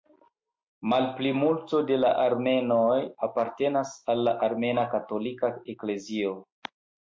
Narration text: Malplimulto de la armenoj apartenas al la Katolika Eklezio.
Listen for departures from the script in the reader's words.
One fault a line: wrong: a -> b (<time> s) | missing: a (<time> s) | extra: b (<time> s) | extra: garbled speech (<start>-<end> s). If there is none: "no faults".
extra: Armena (4.5 s)